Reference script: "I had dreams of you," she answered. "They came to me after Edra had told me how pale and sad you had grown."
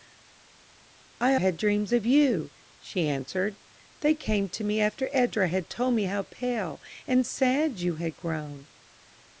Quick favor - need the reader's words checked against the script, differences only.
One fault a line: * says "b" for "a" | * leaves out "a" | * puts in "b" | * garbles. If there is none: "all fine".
all fine